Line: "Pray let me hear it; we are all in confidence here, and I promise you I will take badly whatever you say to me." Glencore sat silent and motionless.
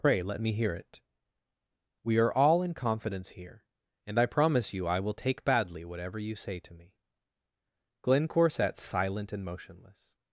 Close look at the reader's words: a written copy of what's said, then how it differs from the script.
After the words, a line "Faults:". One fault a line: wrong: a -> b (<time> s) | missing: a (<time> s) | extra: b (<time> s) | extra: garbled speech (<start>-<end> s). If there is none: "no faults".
"Pray let me hear it; we are all in confidence here, and I promise you I will take badly whatever you say to me." Glencore sat silent and motionless.
Faults:
no faults